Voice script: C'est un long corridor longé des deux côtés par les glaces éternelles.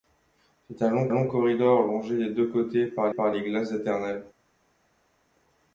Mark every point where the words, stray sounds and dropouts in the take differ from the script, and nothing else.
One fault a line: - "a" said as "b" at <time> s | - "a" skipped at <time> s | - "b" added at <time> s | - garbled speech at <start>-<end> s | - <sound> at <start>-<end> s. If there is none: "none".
- "long" added at 1.1 s
- "par" added at 3.1 s